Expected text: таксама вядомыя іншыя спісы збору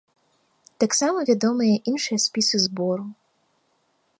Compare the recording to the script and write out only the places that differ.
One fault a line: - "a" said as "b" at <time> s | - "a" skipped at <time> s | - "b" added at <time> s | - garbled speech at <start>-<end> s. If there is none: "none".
none